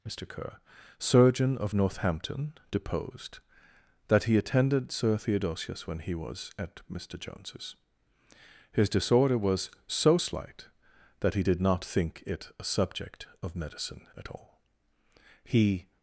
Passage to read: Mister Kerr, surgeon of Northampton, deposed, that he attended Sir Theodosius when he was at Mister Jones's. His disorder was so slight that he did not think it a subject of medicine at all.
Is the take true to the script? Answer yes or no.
no